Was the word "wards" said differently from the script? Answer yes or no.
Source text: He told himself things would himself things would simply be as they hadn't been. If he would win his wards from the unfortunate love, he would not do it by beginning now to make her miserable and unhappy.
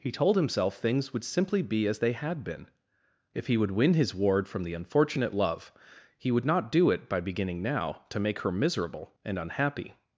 yes